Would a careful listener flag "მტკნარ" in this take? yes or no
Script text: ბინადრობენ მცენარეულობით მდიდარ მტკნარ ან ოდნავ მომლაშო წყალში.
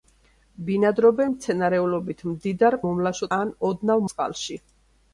yes